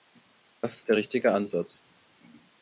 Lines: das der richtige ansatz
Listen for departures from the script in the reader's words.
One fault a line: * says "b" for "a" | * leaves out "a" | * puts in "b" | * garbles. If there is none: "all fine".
* puts in "ist"